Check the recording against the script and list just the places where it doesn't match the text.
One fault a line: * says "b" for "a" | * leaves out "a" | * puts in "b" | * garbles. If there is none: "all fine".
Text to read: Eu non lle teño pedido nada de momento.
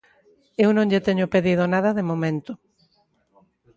all fine